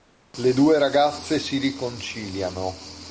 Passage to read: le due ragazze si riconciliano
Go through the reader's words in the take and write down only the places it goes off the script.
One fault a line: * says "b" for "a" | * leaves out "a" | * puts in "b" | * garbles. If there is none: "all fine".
all fine